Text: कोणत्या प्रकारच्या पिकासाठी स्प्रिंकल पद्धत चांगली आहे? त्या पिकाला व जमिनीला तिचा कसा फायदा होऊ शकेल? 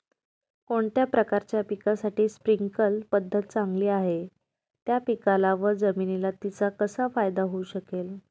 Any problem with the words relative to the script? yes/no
no